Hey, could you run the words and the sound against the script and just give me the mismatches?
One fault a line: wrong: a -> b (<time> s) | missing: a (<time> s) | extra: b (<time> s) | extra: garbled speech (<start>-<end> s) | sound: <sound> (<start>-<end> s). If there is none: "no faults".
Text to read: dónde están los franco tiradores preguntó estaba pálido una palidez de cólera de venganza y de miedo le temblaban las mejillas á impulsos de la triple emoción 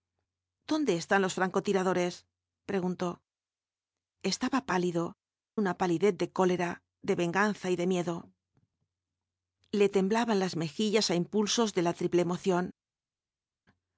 no faults